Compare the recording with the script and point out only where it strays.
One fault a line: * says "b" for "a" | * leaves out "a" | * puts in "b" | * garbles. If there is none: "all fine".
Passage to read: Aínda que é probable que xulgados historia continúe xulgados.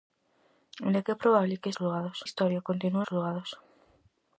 all fine